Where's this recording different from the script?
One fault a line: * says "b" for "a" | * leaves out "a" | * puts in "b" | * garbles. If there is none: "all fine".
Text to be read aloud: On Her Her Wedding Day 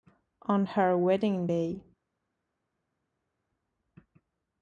* leaves out "Her"